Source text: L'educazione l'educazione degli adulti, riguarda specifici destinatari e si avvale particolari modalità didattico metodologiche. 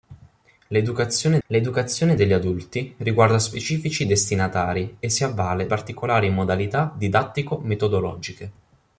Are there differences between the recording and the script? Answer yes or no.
no